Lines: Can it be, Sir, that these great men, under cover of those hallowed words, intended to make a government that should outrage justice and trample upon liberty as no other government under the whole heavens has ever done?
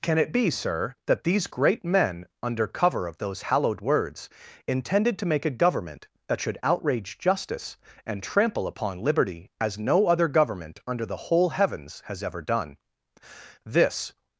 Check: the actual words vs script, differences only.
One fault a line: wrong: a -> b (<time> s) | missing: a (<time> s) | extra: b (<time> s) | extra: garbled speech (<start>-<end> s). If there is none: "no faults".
extra: This (13.6 s)